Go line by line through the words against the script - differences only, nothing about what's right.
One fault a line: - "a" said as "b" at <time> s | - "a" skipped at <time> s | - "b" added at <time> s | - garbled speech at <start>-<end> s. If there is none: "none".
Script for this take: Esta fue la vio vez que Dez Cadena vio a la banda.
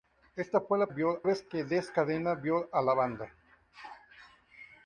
none